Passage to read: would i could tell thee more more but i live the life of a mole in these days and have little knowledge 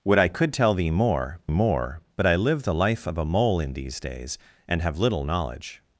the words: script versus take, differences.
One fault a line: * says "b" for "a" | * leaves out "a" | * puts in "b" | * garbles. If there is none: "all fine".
all fine